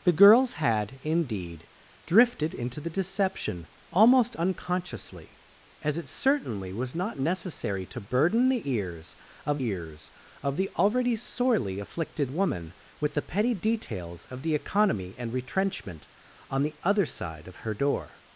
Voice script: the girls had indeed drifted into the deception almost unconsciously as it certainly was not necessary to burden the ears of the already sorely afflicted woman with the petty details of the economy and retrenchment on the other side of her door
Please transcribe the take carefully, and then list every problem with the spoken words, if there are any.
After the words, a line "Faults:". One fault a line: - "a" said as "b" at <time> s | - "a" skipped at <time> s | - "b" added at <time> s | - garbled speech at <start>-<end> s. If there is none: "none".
the girls had indeed drifted into the deception almost unconsciously as it certainly was not necessary to burden the ears of ears of the already sorely afflicted woman with the petty details of the economy and retrenchment on the other side of her door
Faults:
- "ears of" added at 9.6 s